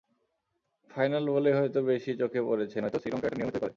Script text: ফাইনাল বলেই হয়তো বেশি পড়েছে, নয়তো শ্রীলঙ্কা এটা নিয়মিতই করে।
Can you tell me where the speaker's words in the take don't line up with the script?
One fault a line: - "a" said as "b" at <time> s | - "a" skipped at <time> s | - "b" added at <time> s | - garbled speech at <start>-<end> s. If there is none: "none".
- "চোখে" added at 2.2 s